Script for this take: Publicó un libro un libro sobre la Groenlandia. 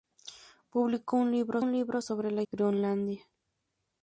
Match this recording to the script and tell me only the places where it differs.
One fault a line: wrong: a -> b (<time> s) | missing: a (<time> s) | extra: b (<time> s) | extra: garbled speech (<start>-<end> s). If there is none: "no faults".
no faults